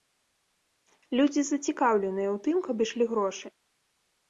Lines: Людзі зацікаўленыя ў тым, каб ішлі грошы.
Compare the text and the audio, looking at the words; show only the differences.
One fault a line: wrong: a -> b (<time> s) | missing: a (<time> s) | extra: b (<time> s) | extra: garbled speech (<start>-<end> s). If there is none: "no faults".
no faults